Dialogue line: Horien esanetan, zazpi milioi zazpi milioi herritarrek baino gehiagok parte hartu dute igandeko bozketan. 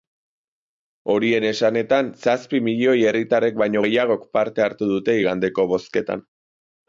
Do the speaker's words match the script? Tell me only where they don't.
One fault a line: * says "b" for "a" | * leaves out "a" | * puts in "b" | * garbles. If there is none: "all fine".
* leaves out "zazpi milioi"